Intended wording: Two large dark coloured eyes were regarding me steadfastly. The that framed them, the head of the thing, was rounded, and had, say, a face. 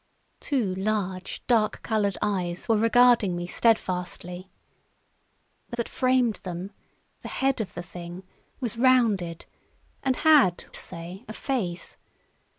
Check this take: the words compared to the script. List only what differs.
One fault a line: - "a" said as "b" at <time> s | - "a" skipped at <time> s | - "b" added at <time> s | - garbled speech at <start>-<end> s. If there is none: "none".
none